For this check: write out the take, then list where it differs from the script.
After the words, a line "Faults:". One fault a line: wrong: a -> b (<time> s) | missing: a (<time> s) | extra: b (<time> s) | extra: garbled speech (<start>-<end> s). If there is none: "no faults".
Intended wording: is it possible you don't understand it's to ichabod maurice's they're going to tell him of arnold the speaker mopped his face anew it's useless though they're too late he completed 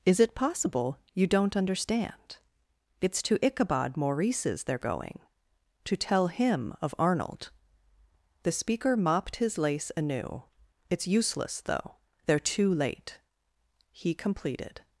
is it possible you don't understand it's to ichabod maurice's they're going to tell him of arnold the speaker mopped his lace anew it's useless though they're too late he completed
Faults:
wrong: face -> lace (9.6 s)